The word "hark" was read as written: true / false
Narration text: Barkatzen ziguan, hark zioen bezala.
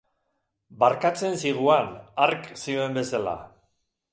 true